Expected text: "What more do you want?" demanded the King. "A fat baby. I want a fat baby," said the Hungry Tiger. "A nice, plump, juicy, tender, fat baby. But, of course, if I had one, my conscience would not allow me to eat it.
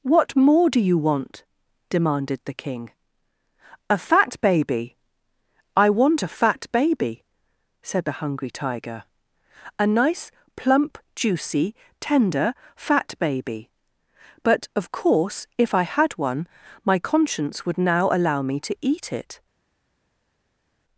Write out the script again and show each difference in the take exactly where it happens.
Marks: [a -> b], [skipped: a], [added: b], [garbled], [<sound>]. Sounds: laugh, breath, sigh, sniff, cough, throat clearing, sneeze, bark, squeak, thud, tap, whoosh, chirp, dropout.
"What more do you want?" demanded the King. "A fat baby. I want a fat baby," said the Hungry Tiger. "A nice, plump, juicy, tender, fat baby. But, of course, if I had one, my conscience would [not -> now] allow me to eat it.